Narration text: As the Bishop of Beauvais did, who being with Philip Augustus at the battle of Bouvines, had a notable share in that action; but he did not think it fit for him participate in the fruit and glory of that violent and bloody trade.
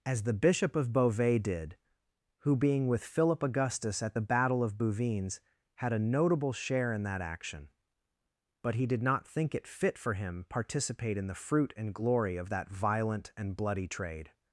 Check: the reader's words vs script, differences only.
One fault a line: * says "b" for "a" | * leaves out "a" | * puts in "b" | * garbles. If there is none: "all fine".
all fine